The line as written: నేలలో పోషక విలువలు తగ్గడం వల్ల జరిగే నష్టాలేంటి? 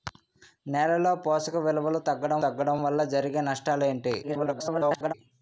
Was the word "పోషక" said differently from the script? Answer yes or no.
no